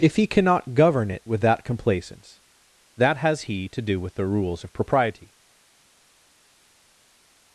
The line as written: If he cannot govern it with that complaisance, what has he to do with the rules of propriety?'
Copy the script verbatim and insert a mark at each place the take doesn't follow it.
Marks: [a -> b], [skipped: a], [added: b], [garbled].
If he cannot govern it with that complaisance, [what -> that] has he to do with the rules of propriety?'